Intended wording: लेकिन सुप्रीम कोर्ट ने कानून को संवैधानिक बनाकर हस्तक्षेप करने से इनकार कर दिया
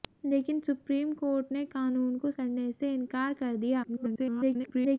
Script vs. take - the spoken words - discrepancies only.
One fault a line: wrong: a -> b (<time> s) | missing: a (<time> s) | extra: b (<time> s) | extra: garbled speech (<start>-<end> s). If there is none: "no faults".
missing: संवैधानिक बनाकर हस्तक्षेप (2.3 s)
extra: garbled speech (3.8-5.0 s)